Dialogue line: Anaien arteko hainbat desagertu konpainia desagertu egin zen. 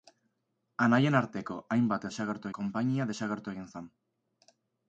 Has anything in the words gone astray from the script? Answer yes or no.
no